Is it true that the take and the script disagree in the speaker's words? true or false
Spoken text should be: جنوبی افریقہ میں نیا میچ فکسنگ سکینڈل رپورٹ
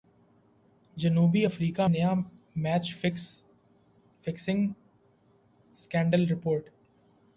true